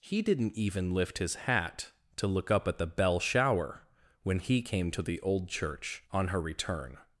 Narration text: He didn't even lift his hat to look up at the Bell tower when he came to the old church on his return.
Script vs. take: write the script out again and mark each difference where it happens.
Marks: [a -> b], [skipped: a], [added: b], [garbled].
He didn't even lift his hat to look up at the Bell [tower -> shower] when he came to the old church on [his -> her] return.